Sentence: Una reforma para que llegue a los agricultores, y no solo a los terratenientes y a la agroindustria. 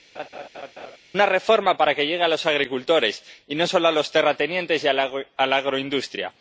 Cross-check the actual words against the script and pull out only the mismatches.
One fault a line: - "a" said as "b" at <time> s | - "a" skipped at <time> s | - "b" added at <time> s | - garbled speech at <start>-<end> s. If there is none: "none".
none